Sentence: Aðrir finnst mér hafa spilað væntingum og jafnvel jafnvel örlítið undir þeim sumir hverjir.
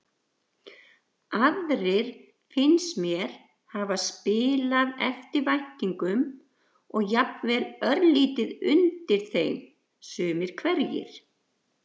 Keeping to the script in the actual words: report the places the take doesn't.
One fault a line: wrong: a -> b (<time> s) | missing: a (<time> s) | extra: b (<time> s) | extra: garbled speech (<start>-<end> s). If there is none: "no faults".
extra: eftir (5.1 s)
missing: jafnvel (7.7 s)